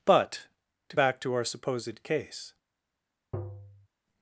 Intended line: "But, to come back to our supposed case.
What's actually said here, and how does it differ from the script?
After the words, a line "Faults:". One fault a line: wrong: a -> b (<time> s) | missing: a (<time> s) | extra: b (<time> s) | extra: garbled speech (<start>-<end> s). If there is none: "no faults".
"But, to back to our supposed case.
Faults:
missing: come (1.0 s)